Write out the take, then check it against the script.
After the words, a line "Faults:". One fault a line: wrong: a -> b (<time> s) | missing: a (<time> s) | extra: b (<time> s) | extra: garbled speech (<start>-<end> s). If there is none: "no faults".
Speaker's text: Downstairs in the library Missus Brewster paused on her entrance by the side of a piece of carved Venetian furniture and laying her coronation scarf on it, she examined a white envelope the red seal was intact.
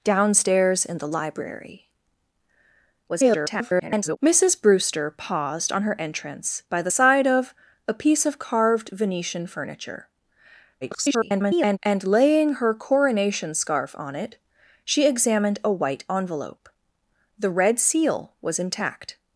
Downstairs in the library [garbled] Missus Brewster paused on her entrance by the side of a piece of carved Venetian furniture [garbled] and laying her coronation scarf on it, she examined a white envelope the red seal was intact.
Faults:
extra: garbled speech (3.1-4.2 s)
extra: garbled speech (10.8-11.8 s)